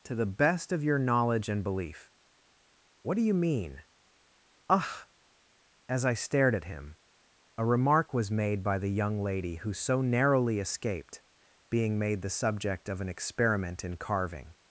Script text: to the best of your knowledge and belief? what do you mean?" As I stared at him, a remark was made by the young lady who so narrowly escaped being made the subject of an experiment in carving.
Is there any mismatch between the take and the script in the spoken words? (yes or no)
yes